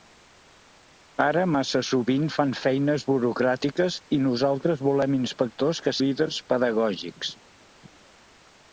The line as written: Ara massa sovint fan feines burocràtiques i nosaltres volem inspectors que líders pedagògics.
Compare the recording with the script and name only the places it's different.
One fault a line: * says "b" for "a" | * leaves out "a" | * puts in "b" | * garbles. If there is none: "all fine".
all fine